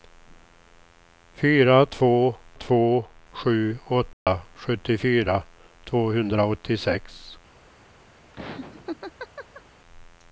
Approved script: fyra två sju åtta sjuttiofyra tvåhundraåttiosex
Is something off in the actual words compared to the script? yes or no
yes